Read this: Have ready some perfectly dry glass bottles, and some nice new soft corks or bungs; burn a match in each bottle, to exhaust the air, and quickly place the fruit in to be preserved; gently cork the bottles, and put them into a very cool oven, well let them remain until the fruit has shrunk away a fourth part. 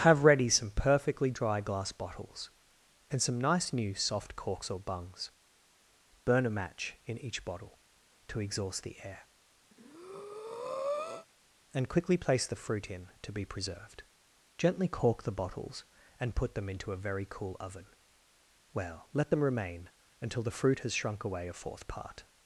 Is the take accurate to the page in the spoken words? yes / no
yes